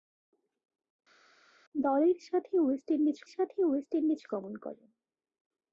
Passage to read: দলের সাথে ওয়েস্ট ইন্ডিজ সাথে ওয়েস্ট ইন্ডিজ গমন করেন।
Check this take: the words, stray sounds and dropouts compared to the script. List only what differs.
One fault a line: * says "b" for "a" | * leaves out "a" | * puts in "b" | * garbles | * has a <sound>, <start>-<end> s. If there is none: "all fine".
all fine